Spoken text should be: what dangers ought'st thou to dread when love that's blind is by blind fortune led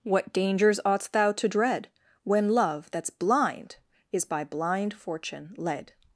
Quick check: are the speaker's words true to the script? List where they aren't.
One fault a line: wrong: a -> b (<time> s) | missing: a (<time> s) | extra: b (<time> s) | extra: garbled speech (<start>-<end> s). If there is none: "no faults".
no faults